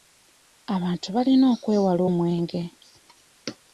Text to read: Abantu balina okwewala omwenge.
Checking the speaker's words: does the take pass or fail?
pass